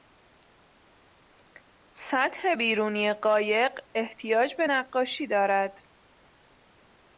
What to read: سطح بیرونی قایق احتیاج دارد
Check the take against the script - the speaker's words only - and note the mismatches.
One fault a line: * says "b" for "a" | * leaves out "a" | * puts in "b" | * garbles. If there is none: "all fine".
* puts in "به نقاشی"